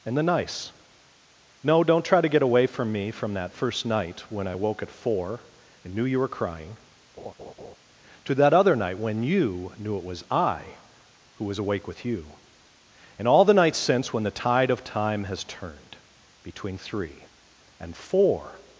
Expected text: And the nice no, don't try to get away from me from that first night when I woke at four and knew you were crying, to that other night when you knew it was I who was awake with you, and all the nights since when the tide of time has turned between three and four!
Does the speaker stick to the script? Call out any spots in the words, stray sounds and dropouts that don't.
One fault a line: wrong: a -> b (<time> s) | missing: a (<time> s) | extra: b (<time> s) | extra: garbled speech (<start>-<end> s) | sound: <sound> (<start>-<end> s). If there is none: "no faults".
sound: laugh (7.2-7.8 s)